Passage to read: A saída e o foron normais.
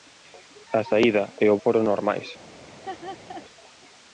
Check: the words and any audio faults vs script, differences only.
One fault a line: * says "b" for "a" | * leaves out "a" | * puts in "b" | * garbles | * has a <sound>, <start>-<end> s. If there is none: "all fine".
* has a laugh, 2.7-3.4 s